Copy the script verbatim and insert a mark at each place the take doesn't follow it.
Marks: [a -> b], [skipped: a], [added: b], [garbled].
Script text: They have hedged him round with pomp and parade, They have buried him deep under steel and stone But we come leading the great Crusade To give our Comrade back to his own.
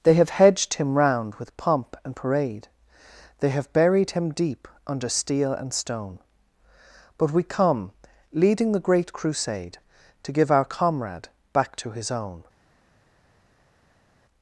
They have hedged him round with pomp and parade, They have buried him deep under steel and stone But we come leading the great Crusade To give our Comrade back to his own.